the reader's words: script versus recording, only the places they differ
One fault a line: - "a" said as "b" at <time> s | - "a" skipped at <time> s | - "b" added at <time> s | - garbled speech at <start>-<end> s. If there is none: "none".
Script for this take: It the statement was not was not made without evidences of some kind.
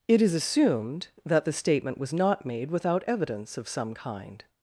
- "is assumed that" added at 0.2 s
- "was not" skipped at 2.5 s
- "evidences" said as "evidence" at 3.0 s